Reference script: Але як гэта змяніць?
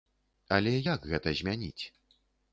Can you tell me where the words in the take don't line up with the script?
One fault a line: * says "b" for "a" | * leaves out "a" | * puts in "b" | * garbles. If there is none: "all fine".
all fine